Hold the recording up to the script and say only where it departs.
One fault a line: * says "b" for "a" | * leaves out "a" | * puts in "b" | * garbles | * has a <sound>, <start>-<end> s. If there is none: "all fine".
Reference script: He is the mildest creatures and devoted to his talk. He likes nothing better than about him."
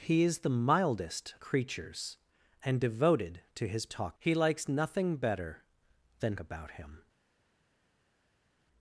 all fine